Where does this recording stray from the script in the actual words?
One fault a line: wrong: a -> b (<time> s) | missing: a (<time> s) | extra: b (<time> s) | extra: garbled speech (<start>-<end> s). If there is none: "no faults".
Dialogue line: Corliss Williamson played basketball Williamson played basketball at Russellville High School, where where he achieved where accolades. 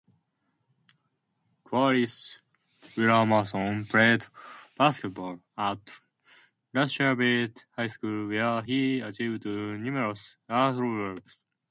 missing: Williamson played basketball (5.4 s)
missing: where (8.6 s)
wrong: where -> numerous (9.4 s)